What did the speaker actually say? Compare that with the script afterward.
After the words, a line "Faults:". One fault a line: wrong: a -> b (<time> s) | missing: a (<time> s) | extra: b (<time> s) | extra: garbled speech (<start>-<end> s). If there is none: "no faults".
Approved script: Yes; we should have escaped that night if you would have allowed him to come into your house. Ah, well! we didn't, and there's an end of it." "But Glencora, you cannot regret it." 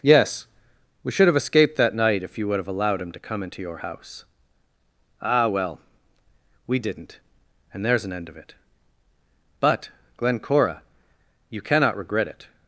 Yes; we should have escaped that night if you would have allowed him to come into your house. Ah, well! we didn't, and there's an end of it." "But Glencora, you cannot regret it."
Faults:
no faults